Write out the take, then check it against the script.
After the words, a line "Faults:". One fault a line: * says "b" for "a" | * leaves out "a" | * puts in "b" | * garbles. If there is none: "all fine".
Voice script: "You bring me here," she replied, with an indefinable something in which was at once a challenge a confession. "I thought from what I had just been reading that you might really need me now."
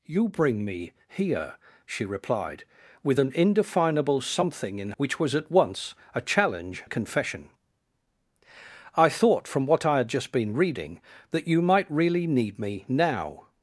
"You bring me here," she replied, with an indefinable something in which was at once a challenge a confession. "I thought from what I had just been reading that you might really need me now."
Faults:
all fine